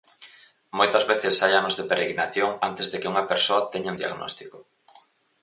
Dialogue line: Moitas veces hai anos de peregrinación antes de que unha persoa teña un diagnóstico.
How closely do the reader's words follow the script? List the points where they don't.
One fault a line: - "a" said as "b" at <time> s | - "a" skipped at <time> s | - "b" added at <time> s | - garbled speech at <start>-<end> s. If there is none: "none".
none